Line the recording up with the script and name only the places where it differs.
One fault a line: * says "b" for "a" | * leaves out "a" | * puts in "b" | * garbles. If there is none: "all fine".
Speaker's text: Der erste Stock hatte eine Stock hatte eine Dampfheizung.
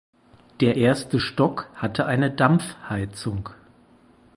* leaves out "Stock hatte eine"